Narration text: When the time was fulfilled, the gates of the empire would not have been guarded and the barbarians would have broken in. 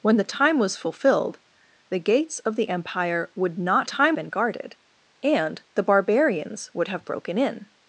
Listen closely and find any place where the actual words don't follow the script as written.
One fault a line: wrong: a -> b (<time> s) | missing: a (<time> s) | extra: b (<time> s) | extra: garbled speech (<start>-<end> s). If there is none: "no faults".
wrong: have -> time (3.8 s)